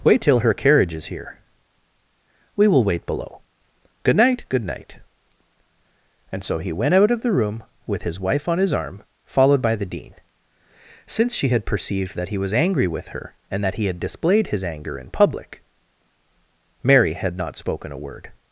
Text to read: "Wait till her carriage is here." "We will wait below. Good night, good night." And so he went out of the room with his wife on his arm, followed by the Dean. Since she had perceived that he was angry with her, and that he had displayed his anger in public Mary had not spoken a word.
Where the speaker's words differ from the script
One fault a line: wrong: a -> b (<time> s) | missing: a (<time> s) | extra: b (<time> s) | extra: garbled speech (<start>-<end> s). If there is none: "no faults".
no faults